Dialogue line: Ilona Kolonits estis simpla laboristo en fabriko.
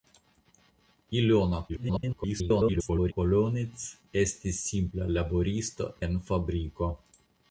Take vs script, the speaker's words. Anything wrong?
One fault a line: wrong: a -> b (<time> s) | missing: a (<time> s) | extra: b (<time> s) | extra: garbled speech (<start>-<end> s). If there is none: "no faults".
extra: garbled speech (1.7-3.1 s)